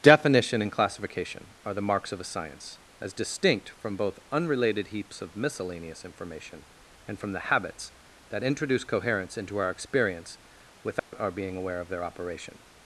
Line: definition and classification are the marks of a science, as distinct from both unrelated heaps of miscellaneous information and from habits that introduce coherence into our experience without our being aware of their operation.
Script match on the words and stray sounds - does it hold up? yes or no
no